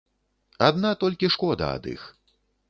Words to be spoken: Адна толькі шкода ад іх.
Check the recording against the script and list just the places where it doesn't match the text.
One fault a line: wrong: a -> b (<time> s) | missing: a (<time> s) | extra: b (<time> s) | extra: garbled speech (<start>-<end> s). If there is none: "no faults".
no faults